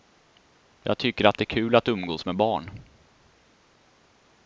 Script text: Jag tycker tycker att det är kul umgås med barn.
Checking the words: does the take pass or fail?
fail